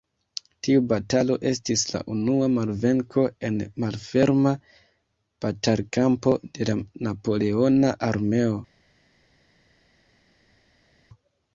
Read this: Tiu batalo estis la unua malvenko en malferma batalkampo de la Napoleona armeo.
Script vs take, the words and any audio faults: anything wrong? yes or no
no